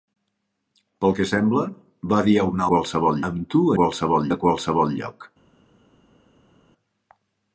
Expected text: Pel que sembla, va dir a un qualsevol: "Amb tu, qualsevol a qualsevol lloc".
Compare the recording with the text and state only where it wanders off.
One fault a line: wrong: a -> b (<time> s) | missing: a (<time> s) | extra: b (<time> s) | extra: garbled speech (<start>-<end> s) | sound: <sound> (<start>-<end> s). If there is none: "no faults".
no faults